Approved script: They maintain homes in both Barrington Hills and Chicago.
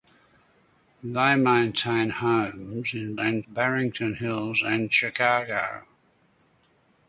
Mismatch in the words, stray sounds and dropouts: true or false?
true